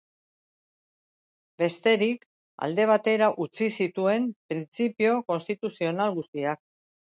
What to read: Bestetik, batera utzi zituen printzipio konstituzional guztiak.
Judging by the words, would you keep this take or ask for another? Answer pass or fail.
fail